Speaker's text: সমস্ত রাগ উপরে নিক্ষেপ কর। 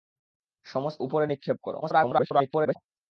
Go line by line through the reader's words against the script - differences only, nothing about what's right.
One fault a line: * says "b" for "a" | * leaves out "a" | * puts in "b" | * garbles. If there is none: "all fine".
* leaves out "রাগ"
* garbles